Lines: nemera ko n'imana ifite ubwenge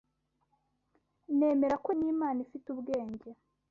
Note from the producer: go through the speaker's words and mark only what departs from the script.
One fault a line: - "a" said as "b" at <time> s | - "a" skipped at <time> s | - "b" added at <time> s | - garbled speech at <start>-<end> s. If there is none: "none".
none